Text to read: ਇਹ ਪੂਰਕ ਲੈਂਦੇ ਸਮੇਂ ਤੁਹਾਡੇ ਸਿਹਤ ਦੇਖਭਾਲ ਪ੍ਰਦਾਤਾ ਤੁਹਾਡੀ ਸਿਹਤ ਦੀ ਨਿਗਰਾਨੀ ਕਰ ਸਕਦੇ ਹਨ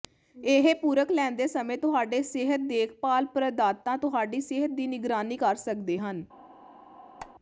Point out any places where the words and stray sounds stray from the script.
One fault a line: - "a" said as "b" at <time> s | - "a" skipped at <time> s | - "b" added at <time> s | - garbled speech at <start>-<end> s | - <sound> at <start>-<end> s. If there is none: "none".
- squeak at 7.2-7.3 s